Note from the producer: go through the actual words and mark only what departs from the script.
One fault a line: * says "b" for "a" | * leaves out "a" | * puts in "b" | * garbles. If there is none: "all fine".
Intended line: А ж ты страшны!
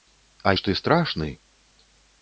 all fine